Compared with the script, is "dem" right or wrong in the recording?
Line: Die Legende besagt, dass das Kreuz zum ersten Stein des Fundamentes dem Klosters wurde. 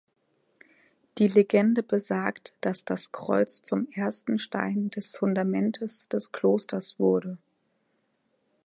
wrong